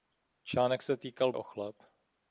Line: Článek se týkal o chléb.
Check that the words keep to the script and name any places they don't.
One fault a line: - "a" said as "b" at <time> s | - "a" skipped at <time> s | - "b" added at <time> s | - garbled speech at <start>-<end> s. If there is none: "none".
none